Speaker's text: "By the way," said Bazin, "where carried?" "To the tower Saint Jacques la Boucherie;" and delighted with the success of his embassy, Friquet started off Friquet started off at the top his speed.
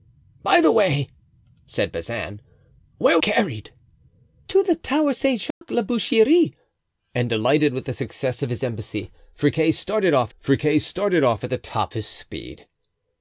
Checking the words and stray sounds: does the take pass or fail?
fail